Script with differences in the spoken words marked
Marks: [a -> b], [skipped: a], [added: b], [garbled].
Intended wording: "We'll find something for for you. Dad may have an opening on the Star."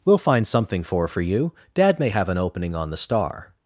"We'll find something for for you. Dad may have an opening on the Star."